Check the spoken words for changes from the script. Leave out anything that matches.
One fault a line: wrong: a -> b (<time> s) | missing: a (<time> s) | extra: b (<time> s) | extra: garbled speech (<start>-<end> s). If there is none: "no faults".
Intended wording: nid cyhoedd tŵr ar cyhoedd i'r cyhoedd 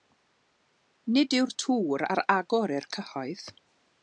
wrong: cyhoedd -> yw'r (1.4 s)
wrong: cyhoedd -> agor (2.4 s)